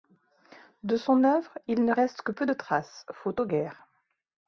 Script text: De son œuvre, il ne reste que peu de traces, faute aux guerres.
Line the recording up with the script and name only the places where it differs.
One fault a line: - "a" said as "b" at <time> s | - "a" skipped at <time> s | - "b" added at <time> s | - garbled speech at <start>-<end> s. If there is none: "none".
none